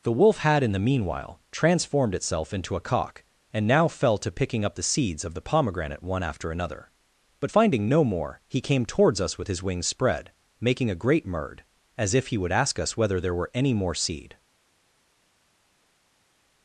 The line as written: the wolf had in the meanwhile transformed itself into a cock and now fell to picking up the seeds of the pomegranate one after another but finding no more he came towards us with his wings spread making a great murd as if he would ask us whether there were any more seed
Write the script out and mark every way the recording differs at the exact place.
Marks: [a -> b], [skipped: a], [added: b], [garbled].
the wolf had in the meanwhile transformed itself into a cock and now fell to picking up the seeds of the pomegranate one after another but finding no more he came towards us with his wings spread making a great murd as if he would ask us whether there were any more seed